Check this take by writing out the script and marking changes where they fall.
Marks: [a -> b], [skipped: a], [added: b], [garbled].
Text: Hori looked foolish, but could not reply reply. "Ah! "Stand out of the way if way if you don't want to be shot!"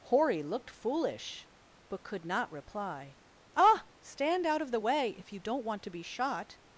Hori looked foolish, but could not reply [skipped: reply.] "Ah! "Stand out of the way if [skipped: way if] you don't want to be shot!"